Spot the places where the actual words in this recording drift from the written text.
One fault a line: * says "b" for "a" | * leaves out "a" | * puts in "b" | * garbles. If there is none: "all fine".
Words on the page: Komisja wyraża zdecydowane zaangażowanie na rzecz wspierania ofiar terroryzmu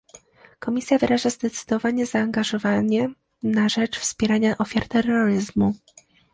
all fine